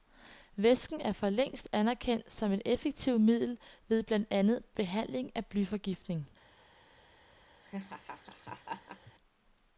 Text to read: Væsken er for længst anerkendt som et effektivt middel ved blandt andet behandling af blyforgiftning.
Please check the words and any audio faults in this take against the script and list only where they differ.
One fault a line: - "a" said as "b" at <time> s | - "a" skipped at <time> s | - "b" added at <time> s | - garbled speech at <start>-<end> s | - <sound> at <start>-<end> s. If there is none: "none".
- laugh at 7.6-9.1 s